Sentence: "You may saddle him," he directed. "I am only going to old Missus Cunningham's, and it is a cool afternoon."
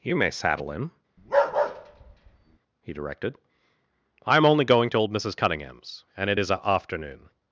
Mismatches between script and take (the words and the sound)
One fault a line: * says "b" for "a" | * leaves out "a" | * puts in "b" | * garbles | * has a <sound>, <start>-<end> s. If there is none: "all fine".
* has a bark, 1.2-2.6 s
* leaves out "cool"